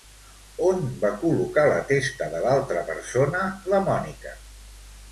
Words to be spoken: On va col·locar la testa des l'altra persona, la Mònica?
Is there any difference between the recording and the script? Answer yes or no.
yes